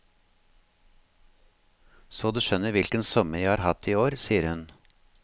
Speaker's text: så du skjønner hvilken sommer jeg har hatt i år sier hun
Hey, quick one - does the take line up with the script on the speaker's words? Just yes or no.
yes